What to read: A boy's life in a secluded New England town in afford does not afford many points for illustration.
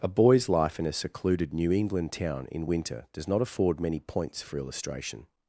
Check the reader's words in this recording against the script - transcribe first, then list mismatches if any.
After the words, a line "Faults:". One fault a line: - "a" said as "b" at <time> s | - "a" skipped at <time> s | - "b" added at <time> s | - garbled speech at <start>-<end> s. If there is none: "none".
A boy's life in a secluded New England town in winter does not afford many points for illustration.
Faults:
- "afford" said as "winter" at 2.7 s